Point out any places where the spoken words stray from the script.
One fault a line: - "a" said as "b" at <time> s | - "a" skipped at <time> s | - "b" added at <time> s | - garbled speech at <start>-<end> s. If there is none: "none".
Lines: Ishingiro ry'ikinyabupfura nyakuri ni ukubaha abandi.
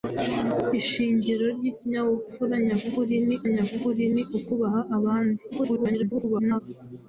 - "nyakuri ni" added at 3.5 s
- garbled speech at 5.5-6.6 s